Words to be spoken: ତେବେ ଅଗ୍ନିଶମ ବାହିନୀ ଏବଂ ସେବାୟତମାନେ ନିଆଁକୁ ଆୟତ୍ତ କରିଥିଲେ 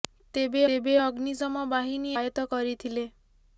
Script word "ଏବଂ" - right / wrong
wrong